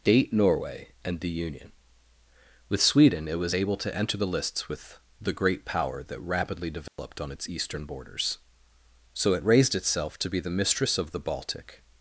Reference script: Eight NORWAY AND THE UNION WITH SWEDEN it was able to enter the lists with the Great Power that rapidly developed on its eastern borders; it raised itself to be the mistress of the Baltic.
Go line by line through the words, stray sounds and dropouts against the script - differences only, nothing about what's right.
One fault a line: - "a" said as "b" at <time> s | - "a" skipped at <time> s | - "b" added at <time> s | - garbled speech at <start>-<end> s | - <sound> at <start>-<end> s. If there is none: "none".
- "Eight" said as "Date" at 0.0 s
- dropout at 6.9-7.0 s
- "so" added at 9.1 s